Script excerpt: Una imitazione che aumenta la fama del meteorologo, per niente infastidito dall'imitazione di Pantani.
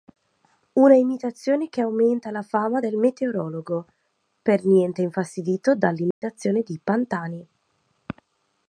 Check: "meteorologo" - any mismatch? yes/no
no